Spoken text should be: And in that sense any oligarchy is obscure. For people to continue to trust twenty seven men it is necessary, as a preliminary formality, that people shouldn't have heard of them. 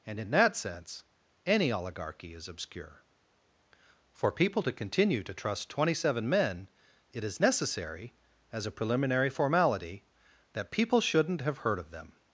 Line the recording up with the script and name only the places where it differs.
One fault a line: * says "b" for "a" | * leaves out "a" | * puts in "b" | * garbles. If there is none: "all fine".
all fine